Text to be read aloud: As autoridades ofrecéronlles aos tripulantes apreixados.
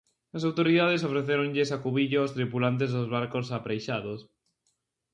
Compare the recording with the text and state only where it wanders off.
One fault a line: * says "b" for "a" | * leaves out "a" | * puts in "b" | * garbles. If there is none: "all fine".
* puts in "acubillo"
* puts in "dos barcos"